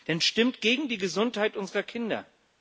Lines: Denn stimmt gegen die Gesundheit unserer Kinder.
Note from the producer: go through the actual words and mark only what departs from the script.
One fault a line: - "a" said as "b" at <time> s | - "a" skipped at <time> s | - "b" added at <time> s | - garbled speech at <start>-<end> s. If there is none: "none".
none